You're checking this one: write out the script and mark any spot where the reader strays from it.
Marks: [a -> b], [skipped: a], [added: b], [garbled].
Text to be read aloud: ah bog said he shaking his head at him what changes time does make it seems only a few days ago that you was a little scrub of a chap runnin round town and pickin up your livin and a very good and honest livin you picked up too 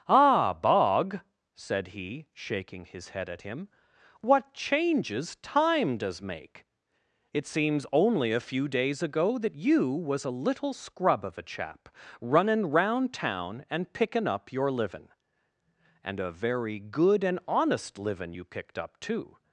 ah bog said he shaking his head at him what changes time does make it seems only a few days ago that you was a little scrub of a chap runnin round town and pickin up your livin and a very good and honest livin you picked up too